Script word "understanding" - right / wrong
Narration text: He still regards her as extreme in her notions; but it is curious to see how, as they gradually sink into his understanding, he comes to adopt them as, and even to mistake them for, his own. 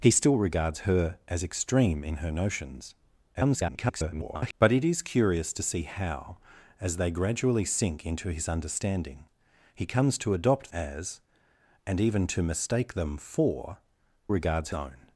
right